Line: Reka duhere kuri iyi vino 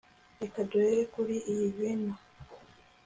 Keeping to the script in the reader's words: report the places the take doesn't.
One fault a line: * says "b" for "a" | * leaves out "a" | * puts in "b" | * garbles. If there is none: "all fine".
all fine